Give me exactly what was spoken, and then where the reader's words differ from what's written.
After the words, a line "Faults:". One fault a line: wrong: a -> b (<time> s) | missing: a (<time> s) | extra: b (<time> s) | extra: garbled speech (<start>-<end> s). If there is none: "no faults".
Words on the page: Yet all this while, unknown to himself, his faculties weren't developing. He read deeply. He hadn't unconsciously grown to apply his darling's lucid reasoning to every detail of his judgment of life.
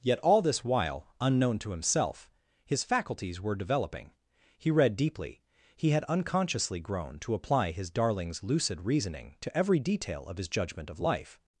Yet all this while, unknown to himself, his faculties were developing. He read deeply. He had unconsciously grown to apply his darling's lucid reasoning to every detail of his judgment of life.
Faults:
wrong: weren't -> were (3.4 s)
wrong: hadn't -> had (5.9 s)